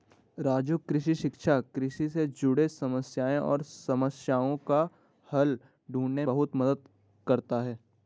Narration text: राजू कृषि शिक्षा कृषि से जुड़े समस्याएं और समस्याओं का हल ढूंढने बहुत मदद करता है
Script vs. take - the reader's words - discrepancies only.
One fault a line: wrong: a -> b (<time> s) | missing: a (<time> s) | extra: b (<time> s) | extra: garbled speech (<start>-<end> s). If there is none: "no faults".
no faults